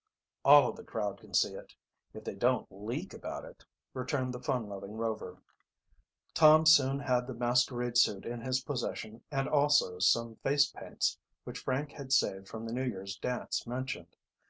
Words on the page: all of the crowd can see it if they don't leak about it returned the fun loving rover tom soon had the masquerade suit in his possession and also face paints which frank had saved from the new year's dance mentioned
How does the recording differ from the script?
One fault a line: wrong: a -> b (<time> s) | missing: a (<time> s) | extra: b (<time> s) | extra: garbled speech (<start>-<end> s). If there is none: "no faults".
extra: some (10.0 s)